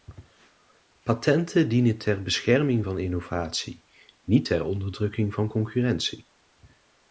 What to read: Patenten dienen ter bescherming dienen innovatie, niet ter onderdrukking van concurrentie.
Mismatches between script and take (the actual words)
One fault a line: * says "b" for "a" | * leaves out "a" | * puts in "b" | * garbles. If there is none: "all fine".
* says "van" for "dienen"